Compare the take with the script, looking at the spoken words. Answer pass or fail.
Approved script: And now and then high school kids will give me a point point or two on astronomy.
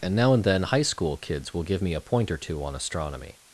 fail